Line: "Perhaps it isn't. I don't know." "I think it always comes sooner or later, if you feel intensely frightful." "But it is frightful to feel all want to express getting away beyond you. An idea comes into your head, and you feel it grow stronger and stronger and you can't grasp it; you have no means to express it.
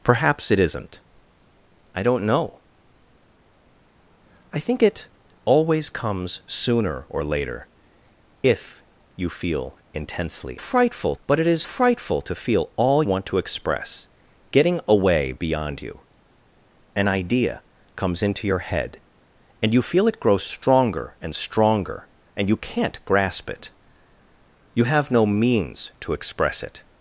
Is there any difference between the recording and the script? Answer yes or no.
no